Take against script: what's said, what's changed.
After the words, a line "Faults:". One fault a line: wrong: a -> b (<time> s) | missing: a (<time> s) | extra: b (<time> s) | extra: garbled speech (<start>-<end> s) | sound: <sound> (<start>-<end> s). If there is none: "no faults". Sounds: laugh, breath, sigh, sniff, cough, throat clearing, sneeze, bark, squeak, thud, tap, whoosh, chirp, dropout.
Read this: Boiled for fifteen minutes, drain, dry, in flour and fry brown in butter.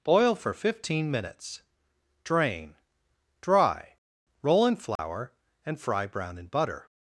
Boil for fifteen minutes, drain, dry, roll in flour and fry brown in butter.
Faults:
wrong: Boiled -> Boil (0.0 s)
extra: roll (4.4 s)
sound: dropout (5.0-5.0 s)